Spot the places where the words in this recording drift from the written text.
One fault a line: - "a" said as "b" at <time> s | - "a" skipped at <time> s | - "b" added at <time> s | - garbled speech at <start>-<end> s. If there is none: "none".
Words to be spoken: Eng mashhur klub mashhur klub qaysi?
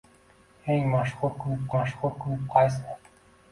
none